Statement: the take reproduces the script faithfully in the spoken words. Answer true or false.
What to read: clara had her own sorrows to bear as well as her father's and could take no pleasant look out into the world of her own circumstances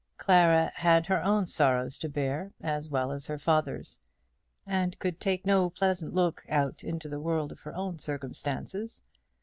true